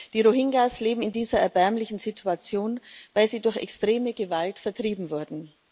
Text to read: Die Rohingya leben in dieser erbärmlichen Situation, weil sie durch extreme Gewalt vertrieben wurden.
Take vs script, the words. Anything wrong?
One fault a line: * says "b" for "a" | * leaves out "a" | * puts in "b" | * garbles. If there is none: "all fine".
all fine